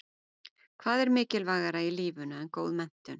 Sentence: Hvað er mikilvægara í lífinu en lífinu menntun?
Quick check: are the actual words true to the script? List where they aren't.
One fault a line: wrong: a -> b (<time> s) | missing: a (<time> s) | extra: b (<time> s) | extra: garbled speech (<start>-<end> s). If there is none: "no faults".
wrong: lífinu -> góð (2.6 s)